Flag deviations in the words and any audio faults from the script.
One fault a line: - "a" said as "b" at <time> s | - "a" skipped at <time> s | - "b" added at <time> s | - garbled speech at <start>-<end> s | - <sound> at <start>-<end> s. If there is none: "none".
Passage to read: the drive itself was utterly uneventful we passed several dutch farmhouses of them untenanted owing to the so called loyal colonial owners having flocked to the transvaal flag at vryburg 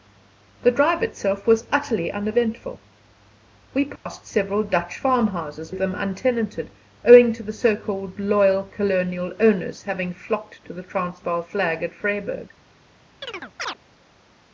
- dropout at 4.0-4.1 s
- chirp at 13.2-13.8 s